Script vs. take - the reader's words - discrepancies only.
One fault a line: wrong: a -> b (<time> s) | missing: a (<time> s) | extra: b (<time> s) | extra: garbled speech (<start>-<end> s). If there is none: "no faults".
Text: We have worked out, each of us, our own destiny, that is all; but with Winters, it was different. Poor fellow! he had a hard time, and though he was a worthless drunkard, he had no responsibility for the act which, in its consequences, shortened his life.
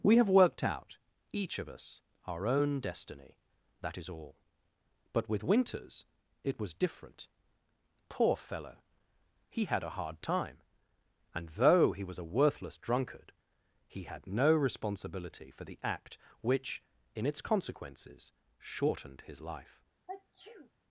no faults